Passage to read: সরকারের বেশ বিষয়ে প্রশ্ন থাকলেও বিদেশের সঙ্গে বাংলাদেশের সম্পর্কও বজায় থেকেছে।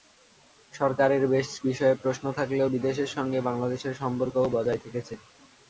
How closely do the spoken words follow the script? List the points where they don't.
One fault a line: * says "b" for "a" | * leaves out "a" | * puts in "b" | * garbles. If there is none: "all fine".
all fine